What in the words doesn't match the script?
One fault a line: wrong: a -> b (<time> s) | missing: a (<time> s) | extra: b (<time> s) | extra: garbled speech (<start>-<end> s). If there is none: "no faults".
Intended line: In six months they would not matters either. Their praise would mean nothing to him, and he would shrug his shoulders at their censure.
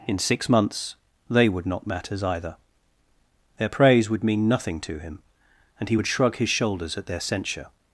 no faults